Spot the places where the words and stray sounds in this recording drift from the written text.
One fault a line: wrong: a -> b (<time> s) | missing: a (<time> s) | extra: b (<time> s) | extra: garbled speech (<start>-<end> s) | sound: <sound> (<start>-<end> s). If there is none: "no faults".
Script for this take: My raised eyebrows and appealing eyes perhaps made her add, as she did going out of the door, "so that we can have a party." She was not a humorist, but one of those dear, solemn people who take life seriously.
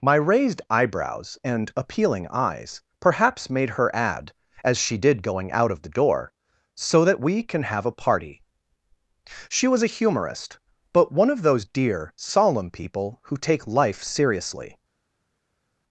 missing: not (9.8 s)